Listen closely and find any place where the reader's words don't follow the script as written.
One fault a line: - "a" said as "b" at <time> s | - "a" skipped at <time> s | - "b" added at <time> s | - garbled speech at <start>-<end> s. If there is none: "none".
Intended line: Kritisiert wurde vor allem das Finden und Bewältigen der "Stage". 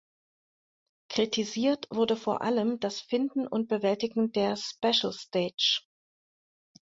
- "Special" added at 4.6 s